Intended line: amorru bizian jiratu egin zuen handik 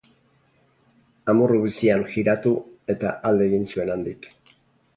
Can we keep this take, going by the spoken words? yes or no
no